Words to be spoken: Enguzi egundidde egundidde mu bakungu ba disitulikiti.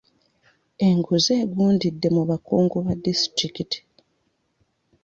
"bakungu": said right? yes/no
yes